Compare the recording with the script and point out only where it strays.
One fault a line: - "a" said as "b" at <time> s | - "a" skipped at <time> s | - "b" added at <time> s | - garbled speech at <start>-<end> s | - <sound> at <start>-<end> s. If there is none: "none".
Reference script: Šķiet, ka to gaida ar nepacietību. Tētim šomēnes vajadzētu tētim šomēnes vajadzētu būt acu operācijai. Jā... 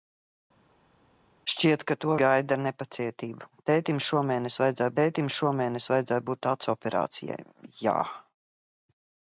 none